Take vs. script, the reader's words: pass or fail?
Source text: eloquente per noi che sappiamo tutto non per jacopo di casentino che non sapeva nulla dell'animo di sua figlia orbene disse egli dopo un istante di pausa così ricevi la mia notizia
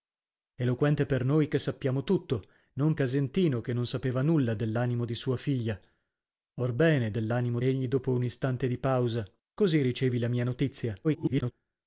fail